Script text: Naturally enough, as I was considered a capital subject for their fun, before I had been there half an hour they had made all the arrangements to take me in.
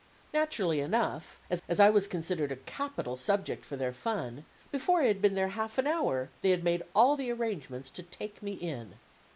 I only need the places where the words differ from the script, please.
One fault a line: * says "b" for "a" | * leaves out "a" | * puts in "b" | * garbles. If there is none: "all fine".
* puts in "as"